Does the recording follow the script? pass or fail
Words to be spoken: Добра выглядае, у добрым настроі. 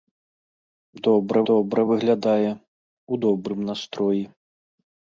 fail